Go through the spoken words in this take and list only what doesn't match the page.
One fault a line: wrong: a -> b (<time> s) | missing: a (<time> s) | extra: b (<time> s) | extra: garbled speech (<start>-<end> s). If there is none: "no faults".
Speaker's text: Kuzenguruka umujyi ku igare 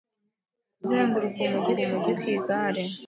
extra: umujyi (1.8 s)